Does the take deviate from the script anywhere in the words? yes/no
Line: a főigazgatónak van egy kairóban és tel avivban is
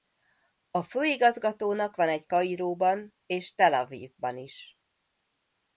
no